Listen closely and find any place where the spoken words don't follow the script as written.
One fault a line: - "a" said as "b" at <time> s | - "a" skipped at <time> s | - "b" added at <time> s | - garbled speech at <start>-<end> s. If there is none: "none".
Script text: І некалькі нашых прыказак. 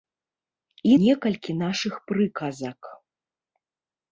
none